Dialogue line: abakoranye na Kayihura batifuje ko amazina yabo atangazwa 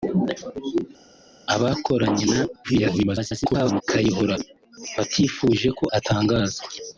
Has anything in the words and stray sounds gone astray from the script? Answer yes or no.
yes